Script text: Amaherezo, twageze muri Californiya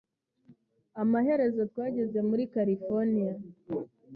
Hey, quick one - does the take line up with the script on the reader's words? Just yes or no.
yes